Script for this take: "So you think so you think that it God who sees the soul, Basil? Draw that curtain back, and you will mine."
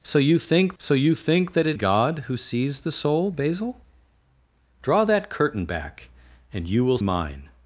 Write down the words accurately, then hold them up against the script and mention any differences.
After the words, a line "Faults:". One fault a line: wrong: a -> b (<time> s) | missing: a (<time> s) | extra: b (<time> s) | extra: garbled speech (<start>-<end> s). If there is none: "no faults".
"So you think so you think that it God who sees the soul, Basil? Draw that curtain back, and you will mine."
Faults:
no faults